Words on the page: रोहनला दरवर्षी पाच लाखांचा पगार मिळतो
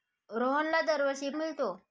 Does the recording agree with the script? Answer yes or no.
no